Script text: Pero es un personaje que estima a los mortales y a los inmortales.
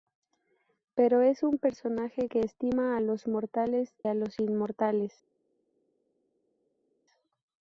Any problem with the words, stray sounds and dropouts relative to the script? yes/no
yes